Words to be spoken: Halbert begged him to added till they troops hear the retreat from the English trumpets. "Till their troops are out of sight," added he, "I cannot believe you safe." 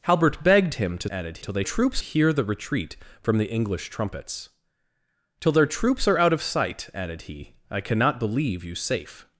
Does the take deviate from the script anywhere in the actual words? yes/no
no